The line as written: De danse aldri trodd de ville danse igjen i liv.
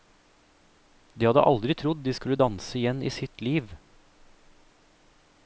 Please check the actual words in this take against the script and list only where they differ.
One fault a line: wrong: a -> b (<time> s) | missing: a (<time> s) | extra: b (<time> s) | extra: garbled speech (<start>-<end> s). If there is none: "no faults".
wrong: danse -> hadde (1.3 s)
wrong: ville -> skulle (2.2 s)
extra: sitt (3.2 s)